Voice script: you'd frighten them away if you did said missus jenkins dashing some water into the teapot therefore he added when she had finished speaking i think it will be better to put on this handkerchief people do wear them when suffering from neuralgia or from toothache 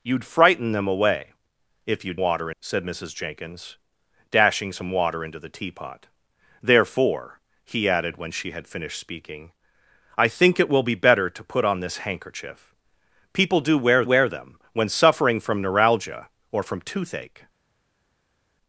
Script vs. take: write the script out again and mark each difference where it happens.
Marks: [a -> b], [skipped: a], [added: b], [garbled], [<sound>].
you'd frighten them away if you [did -> water] said missus jenkins dashing some water into the teapot therefore he added when she had finished speaking i think it will be better to put on this handkerchief people do wear [added: wear] them when suffering from neuralgia or from toothache